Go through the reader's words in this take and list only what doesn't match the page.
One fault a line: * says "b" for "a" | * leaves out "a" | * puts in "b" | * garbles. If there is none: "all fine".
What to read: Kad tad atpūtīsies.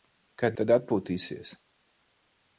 all fine